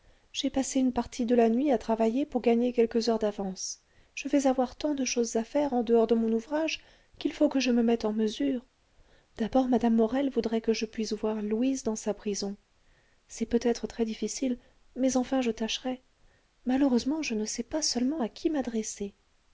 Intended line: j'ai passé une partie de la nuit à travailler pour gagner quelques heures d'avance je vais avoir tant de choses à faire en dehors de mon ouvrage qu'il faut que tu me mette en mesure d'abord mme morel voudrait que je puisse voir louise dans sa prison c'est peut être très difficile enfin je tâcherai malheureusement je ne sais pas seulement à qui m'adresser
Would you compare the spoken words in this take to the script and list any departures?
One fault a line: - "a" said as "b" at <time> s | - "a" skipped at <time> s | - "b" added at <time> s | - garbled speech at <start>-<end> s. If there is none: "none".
- "tu" said as "je" at 7.6 s
- "mais" added at 14.9 s